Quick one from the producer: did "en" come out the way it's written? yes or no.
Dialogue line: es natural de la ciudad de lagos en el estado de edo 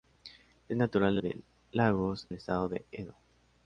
no